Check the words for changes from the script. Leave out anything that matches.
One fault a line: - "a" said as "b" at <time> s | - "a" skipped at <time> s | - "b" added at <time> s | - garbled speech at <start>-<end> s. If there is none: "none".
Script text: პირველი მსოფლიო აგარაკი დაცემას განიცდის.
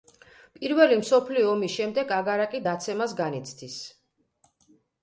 - "ომის შემდეგ" added at 1.5 s